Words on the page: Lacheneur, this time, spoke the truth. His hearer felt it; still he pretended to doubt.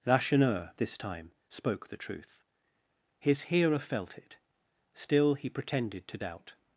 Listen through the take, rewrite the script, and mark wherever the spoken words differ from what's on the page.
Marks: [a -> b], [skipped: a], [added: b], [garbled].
Lacheneur, this time, spoke the truth. His hearer felt it; still he pretended to doubt.